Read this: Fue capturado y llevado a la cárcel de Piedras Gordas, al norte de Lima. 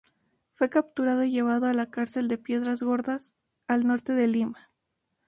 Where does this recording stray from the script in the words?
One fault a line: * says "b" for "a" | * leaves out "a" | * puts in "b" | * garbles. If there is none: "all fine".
all fine